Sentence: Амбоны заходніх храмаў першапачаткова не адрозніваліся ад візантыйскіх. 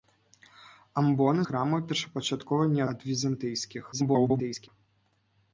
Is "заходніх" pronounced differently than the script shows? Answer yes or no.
yes